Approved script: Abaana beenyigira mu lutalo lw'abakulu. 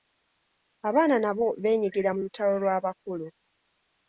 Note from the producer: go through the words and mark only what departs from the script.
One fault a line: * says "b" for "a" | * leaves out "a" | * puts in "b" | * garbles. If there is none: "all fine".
* puts in "nabo"